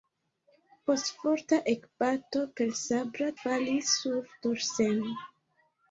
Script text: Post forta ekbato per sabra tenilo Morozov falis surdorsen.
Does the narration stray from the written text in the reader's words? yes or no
yes